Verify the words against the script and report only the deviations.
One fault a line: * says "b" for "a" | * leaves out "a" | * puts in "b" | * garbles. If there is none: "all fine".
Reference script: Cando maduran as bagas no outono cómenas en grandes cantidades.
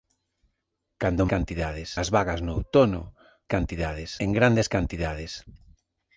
* says "cantidades" for "maduran"
* says "cantidades" for "cómenas"